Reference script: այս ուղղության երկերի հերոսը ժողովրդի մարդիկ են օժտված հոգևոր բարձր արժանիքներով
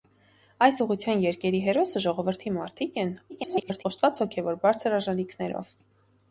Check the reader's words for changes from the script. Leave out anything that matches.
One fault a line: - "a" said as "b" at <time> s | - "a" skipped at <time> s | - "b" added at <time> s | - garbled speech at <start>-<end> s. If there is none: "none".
- garbled speech at 3.3-3.8 s